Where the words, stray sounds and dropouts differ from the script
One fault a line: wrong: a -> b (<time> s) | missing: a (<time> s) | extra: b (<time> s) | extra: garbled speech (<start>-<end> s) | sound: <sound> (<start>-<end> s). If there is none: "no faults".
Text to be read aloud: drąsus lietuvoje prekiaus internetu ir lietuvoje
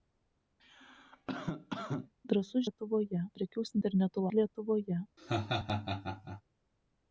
sound: cough (0.6-2.1 s)
sound: laugh (5.2-6.4 s)